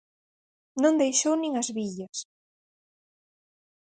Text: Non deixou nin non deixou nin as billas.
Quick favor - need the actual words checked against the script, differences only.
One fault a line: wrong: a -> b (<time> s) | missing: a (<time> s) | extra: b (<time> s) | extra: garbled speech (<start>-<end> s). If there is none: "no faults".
missing: non deixou nin (1.5 s)